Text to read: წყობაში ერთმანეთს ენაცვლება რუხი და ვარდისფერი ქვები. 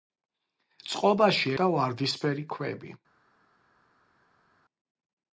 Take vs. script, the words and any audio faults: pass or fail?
fail